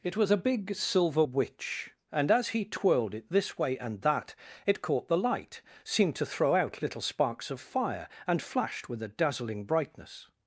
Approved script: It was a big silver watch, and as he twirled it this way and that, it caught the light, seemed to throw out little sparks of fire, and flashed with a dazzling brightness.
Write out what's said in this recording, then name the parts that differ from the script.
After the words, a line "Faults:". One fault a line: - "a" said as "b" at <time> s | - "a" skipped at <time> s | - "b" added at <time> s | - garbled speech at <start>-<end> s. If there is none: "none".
It was a big silver witch, and as he twirled it this way and that, it caught the light, seemed to throw out little sparks of fire, and flashed with a dazzling brightness.
Faults:
- "watch" said as "witch" at 1.2 s